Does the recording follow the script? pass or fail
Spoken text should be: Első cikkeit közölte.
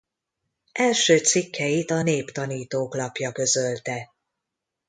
fail